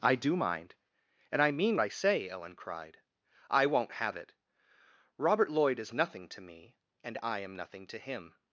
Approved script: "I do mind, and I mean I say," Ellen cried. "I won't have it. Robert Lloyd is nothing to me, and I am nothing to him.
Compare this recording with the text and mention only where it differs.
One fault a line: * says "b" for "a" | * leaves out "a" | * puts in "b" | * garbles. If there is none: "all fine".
all fine